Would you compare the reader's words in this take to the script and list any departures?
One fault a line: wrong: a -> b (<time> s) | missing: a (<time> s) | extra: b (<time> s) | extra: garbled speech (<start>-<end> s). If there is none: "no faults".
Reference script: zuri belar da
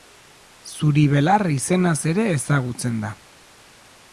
extra: izenaz ere ezagutzen (1.6 s)